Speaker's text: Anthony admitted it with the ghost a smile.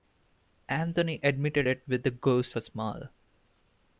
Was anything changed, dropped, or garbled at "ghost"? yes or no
no